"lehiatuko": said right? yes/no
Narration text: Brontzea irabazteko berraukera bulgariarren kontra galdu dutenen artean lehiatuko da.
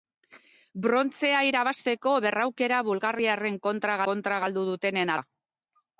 no